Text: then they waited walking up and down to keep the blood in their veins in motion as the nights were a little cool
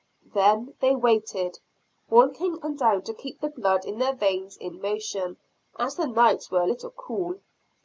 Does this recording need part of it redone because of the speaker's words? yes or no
yes